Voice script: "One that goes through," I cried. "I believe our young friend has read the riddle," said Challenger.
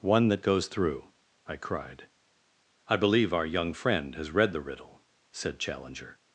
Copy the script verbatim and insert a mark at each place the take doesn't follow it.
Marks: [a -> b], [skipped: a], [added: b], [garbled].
"One that goes through," I cried. "I believe our young friend has read the riddle," said Challenger.